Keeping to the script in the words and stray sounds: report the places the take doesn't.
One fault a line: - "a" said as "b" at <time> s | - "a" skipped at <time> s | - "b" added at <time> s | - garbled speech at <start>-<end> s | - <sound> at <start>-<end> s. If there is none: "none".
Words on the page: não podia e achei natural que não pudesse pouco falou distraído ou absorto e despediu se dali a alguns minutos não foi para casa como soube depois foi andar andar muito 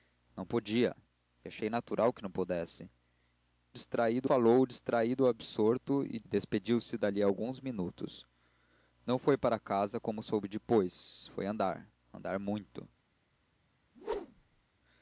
- "pouco" said as "distraído" at 3.7 s
- whoosh at 13.9-14.6 s